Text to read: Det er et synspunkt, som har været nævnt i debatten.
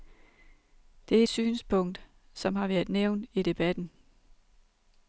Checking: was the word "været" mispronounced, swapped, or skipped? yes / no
no